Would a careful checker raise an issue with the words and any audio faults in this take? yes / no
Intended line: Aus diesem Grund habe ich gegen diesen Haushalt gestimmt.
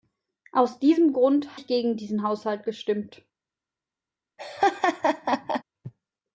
yes